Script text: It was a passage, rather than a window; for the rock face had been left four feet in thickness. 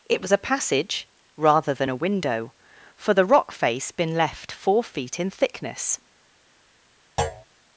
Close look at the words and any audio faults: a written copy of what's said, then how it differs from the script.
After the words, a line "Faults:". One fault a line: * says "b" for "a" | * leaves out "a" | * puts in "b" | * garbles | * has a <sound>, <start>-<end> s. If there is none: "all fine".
It was a passage, rather than a window; for the rock face been left four feet in thickness.
Faults:
* leaves out "had"
* has a thud, 7.2-7.4 s